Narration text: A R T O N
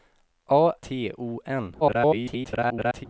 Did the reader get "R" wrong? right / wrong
wrong